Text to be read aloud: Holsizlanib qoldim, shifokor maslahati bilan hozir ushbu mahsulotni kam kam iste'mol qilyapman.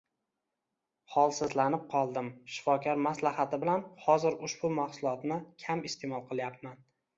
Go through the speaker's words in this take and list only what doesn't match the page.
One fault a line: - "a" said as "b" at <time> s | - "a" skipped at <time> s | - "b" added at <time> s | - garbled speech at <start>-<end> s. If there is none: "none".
- "kam" skipped at 5.9 s